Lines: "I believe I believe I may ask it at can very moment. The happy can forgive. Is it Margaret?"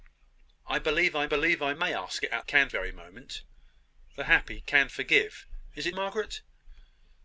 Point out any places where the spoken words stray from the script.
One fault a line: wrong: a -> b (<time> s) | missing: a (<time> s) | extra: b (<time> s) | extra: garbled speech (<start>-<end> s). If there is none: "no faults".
no faults